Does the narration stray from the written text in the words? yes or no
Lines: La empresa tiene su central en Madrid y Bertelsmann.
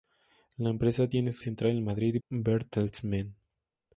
no